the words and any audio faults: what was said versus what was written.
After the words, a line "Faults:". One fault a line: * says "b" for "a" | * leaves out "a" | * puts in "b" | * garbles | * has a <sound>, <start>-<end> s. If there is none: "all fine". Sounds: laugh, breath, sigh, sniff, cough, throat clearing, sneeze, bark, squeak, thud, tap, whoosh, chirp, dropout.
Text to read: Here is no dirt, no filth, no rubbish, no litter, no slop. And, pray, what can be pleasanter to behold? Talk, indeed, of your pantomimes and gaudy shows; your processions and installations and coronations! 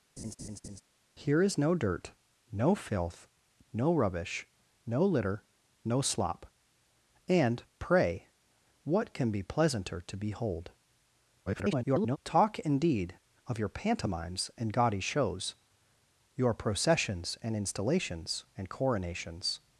Here is no dirt, no filth, no rubbish, no litter, no slop. And, pray, what can be pleasanter to behold? [garbled] Talk, indeed, of your pantomimes and gaudy shows; your processions and installations and coronations!
Faults:
* has a laugh, 0.2-0.8 s
* garbles